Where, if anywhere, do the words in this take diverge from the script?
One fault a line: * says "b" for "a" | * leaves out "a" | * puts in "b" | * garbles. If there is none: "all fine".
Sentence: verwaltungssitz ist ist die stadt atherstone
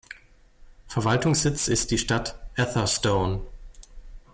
* leaves out "ist"